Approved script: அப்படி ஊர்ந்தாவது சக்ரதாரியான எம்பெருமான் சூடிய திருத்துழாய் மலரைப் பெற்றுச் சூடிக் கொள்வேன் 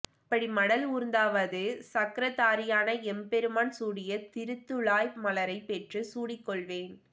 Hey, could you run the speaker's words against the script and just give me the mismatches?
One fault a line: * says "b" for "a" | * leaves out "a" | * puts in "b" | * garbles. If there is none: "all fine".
* puts in "மடல்"